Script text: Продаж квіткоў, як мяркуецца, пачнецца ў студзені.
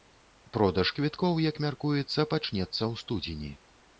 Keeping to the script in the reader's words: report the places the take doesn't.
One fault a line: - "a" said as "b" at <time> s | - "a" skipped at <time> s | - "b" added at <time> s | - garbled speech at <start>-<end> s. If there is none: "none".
none